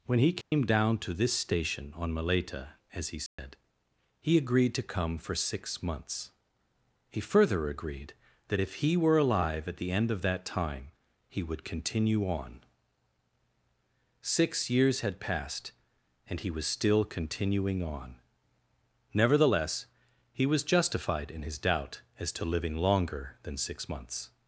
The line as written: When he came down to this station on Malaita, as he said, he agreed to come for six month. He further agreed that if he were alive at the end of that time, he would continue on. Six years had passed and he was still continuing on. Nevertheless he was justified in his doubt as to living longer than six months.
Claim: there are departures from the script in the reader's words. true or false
true